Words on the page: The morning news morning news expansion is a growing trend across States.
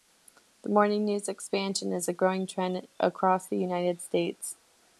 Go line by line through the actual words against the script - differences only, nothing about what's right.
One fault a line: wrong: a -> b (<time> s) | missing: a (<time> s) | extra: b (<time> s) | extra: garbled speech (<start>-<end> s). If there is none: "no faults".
missing: morning news (1.3 s)
extra: the United (3.4 s)